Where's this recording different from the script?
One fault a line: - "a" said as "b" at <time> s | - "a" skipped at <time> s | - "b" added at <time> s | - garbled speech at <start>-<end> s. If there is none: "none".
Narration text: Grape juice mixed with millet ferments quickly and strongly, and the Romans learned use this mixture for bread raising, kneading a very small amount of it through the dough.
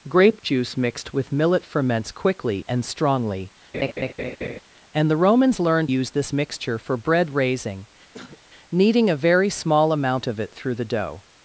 none